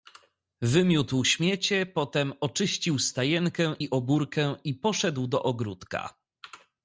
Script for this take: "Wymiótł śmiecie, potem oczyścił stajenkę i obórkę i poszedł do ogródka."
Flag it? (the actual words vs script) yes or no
no